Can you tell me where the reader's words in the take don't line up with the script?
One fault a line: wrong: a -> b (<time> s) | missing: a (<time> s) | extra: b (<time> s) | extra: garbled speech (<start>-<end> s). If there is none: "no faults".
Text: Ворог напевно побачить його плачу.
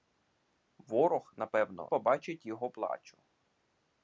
no faults